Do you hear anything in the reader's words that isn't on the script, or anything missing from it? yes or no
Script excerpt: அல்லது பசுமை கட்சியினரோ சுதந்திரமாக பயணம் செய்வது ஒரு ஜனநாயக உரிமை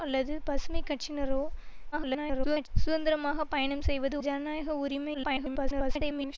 yes